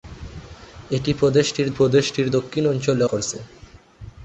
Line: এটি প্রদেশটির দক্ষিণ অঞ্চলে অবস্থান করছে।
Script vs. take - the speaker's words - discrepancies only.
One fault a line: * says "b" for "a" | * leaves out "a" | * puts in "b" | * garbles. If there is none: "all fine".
* puts in "প্রদেশটির"
* leaves out "অবস্থান"